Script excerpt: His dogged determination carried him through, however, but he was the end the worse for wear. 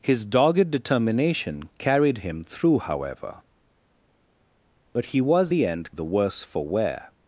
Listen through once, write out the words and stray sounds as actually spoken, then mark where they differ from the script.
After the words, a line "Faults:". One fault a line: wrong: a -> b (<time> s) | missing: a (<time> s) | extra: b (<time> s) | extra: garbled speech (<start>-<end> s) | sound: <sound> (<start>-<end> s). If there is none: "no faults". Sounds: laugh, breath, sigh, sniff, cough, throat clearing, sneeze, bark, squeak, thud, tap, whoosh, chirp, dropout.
His dogged determination carried him through, however, but he was the end the worse for wear.
Faults:
no faults